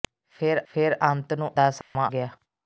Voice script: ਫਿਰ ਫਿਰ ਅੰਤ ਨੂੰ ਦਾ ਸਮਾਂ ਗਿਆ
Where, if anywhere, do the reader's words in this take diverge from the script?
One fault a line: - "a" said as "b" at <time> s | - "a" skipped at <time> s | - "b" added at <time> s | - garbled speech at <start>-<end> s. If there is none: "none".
none